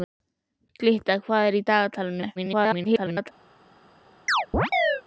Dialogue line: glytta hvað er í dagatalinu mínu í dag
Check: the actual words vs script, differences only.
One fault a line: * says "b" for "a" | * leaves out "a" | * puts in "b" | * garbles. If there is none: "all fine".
* leaves out "mínu"
* garbles